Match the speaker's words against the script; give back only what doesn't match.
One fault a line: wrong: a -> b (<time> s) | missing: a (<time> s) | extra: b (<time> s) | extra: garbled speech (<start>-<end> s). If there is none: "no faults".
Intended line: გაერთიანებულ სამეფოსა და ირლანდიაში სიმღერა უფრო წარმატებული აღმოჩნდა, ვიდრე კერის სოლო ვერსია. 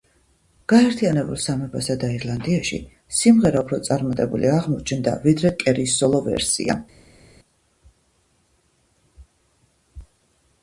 no faults